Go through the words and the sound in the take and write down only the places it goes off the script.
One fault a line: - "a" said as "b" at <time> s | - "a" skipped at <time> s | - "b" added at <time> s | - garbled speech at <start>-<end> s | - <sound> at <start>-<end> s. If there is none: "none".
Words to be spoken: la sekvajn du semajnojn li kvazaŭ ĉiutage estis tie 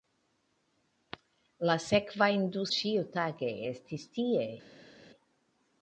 - "semajnojn li kvazaŭ" skipped at 2.6 s